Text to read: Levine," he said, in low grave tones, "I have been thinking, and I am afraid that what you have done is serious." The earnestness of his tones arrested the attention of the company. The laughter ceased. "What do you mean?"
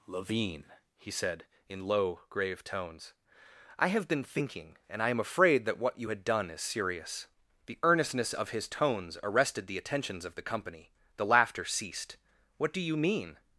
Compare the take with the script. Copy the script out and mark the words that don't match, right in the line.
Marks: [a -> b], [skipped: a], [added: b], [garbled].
Levine," he said, in low grave tones, "I have been thinking, and I am afraid that what you [have -> had] done is serious." The earnestness of his tones arrested the [attention -> attentions] of the company. The laughter ceased. "What do you mean?"